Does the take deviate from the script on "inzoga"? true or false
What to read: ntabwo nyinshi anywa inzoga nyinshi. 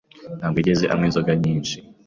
false